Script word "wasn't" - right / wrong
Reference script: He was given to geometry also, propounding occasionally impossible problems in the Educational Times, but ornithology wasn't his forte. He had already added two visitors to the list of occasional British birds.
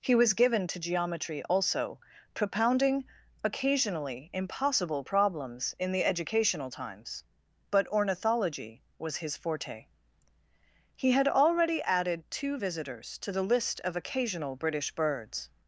wrong